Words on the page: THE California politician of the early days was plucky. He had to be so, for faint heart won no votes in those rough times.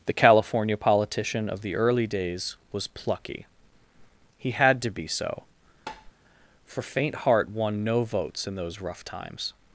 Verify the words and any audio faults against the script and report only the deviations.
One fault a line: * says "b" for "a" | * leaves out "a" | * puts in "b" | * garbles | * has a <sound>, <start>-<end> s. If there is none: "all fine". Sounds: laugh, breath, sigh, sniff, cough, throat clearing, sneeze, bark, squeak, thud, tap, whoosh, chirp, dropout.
* has a tap, 5.9-6.1 s